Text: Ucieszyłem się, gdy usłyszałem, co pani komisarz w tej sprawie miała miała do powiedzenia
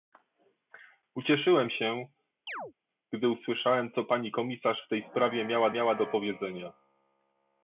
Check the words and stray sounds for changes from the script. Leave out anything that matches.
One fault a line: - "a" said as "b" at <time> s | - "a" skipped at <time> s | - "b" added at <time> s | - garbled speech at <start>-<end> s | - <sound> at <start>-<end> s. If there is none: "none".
- chirp at 2.5-2.7 s